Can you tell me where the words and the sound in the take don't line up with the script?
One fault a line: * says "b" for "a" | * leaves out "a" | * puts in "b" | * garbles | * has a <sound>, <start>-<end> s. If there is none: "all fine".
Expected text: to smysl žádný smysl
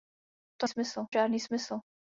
all fine